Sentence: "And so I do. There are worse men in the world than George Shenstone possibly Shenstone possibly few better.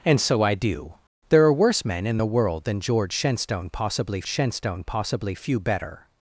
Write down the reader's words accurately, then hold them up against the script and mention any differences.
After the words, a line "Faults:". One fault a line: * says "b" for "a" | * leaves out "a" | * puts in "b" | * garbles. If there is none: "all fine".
"And so I do. There are worse men in the world than George Shenstone possibly Shenstone possibly few better.
Faults:
all fine